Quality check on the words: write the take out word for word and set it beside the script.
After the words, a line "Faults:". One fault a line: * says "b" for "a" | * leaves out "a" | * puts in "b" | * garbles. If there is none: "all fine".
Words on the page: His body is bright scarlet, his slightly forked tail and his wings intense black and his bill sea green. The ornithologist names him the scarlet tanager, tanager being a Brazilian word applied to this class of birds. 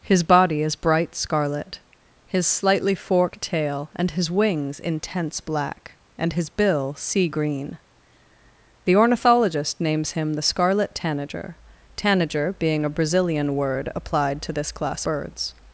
His body is bright scarlet, his slightly forked tail and his wings intense black and his bill sea green. The ornithologist names him the scarlet tanager, tanager being a Brazilian word applied to this class birds.
Faults:
* leaves out "of"